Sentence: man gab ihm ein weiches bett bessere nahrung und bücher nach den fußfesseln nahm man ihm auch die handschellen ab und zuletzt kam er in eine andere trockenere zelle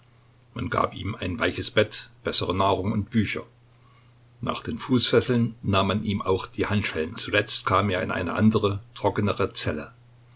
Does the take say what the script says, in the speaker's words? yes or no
no